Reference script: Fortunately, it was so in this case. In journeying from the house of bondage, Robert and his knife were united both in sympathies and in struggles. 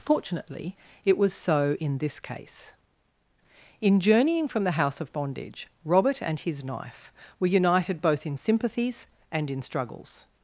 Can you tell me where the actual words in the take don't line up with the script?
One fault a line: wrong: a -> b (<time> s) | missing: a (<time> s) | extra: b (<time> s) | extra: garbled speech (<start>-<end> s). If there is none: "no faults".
no faults